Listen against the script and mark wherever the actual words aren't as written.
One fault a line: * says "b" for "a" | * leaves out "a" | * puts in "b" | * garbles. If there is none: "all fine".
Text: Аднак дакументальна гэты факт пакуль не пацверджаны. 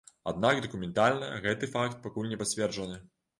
all fine